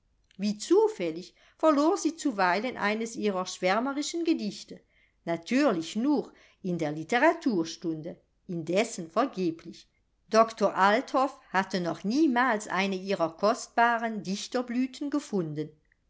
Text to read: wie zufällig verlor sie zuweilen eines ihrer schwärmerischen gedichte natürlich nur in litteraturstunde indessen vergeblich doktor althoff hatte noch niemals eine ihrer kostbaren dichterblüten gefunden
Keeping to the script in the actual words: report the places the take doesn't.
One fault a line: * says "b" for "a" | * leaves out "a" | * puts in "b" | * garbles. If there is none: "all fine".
* puts in "der"